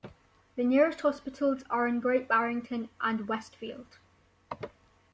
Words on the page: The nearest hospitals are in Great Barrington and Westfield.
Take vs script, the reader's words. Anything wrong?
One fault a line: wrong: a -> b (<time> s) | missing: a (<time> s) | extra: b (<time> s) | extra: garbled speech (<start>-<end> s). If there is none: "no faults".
no faults